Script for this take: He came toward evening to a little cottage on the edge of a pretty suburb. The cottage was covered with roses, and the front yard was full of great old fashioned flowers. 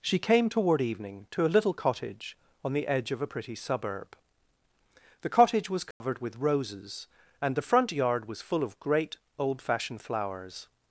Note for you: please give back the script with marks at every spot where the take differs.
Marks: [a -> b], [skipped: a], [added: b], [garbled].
[He -> She] came toward evening to a little cottage on the edge of a pretty suburb. The cottage was covered with roses, and the front yard was full of great old fashioned flowers.